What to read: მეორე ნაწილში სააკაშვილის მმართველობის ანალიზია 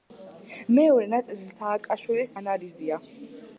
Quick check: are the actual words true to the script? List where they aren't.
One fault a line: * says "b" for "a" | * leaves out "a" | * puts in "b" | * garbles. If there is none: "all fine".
* leaves out "მმართველობის"